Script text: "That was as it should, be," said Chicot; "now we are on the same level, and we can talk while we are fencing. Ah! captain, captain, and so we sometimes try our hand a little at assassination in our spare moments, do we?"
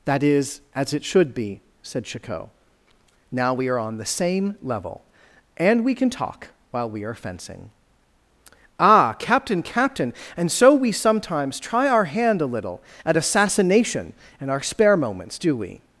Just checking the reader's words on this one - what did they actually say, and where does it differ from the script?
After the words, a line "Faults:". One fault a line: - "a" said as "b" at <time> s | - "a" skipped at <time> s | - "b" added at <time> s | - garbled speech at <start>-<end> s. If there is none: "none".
"That is as it should, be," said Chicot; "now we are on the same level, and we can talk while we are fencing. Ah! captain, captain, and so we sometimes try our hand a little at assassination in our spare moments, do we?"
Faults:
- "was" said as "is" at 0.2 s